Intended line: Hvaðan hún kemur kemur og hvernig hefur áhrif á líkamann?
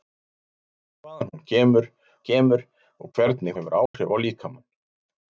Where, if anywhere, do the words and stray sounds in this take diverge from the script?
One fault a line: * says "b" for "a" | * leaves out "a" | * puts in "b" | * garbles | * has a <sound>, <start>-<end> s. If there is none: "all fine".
* has a dropout, 3.9-3.9 s